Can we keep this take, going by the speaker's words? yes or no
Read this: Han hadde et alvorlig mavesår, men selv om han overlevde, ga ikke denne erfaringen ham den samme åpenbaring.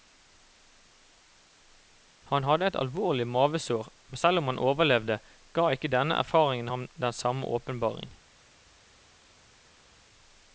yes